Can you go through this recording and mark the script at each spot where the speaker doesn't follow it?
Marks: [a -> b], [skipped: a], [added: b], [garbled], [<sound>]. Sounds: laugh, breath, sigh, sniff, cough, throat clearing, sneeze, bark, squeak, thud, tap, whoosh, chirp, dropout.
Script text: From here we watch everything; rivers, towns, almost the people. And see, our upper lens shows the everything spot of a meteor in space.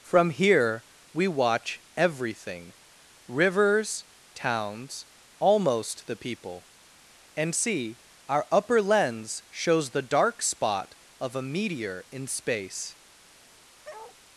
From here we watch everything; rivers, towns, almost the people. And see, our upper lens shows the [everything -> dark] spot of a meteor in space. [bark]